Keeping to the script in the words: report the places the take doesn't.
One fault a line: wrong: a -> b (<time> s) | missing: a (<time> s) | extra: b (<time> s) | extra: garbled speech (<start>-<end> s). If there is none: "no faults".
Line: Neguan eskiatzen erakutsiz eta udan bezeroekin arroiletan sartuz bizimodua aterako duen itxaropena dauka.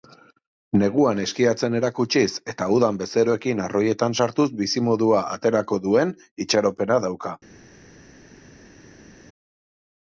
no faults